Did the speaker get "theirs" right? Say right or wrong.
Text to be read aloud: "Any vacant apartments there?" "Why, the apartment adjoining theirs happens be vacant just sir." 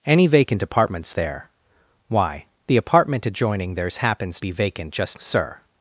right